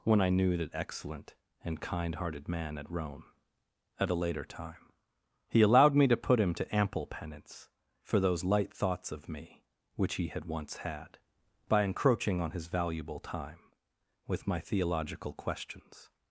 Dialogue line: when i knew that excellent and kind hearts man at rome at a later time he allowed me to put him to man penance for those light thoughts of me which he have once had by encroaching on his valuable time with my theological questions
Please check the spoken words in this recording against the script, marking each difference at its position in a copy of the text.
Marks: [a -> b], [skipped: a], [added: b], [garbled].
when i knew that excellent and kind [hearts -> hearted] man at rome at a later time he allowed me to put him to [man -> ample] penance for those light thoughts of me which he [have -> had] once had by encroaching on his valuable time with my theological questions